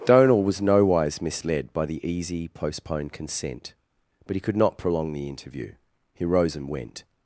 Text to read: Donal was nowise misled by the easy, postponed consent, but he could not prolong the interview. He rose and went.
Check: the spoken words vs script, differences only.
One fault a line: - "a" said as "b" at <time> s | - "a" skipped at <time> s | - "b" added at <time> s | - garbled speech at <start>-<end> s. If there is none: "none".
none